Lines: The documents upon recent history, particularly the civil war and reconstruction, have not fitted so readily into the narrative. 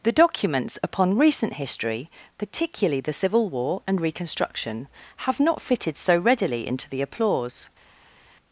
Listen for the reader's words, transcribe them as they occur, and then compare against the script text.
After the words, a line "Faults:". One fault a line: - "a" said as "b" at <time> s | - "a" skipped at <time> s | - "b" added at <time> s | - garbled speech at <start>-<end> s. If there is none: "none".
The documents upon recent history, particularly the civil war and reconstruction, have not fitted so readily into the applause.
Faults:
- "narrative" said as "applause" at 7.0 s